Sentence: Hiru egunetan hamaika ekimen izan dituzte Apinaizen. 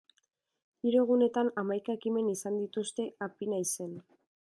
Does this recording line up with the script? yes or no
yes